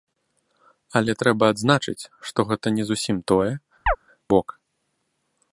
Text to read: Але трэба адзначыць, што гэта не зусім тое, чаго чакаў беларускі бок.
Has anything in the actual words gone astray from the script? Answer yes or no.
yes